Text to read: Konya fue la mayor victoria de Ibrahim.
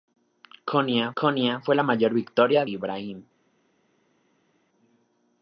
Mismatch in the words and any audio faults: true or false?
true